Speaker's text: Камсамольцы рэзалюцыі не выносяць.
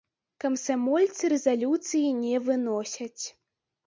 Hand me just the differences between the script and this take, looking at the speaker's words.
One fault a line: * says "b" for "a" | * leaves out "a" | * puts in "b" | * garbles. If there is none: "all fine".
all fine